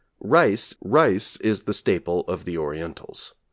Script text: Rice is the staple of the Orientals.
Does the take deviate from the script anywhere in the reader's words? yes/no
yes